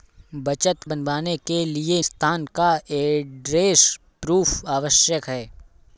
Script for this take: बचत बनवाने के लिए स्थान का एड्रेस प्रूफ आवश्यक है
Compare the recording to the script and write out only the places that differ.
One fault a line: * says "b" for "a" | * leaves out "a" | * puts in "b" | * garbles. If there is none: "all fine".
all fine